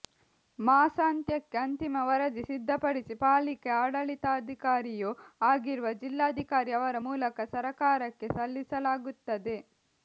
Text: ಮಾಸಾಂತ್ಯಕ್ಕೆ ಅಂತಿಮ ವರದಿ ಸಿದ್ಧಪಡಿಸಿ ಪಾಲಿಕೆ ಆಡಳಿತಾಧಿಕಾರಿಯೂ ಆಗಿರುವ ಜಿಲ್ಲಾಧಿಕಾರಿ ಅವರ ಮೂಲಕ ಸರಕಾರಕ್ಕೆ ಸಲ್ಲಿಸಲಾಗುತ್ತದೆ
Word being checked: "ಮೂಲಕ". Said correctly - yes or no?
yes